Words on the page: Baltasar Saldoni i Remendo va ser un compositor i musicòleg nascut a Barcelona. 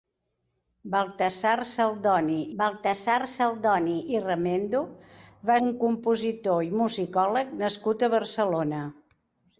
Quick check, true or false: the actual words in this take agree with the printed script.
false